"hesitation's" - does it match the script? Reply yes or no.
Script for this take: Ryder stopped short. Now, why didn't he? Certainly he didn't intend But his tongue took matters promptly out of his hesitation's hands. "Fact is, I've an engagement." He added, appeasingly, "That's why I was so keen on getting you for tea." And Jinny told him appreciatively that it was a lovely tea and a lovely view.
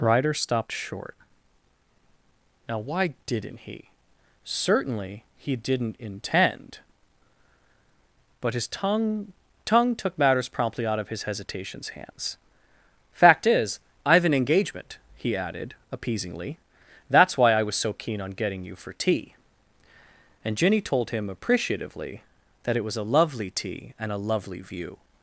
yes